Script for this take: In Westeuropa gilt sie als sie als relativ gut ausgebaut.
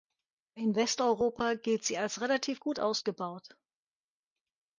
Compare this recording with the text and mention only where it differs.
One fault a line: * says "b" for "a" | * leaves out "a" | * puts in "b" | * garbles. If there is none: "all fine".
* leaves out "sie als"